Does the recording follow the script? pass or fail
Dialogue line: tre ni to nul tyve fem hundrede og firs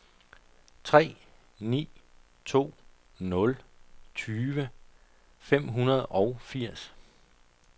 pass